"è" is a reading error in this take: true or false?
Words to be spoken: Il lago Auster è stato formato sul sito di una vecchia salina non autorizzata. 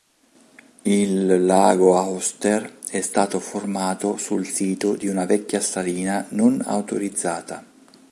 false